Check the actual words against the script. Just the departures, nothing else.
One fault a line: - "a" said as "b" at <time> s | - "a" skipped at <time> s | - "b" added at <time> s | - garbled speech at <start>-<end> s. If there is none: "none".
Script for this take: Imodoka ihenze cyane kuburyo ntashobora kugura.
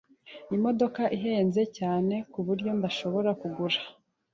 none